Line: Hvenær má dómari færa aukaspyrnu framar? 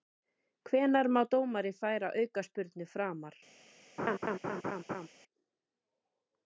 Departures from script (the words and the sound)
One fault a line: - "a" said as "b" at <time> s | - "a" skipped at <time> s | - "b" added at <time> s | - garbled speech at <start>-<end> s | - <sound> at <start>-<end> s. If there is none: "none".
- laugh at 4.0-5.1 s